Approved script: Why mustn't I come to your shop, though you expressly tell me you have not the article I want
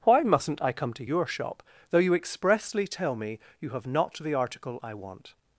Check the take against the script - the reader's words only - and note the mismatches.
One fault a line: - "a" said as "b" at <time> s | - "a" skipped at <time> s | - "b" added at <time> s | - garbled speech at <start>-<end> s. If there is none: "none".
none